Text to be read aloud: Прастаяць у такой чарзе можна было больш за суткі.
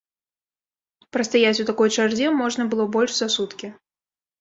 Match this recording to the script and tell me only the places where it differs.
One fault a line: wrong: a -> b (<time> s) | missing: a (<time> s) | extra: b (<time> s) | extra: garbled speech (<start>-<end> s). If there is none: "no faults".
no faults